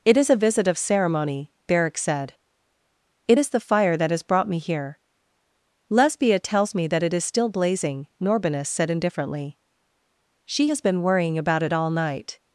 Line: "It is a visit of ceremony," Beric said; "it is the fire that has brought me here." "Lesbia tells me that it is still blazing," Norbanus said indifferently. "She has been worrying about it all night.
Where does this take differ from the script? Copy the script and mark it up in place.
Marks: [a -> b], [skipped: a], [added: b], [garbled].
"It is a visit of ceremony," Beric said; "it is the fire that has brought me here." "Lesbia tells me that it is still blazing," Norbanus said indifferently. "She has been worrying about it all night.